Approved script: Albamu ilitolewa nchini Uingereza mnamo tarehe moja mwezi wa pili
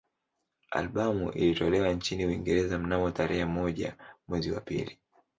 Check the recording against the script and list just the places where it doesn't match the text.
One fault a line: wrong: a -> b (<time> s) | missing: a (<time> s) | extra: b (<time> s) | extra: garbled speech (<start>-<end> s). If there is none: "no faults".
no faults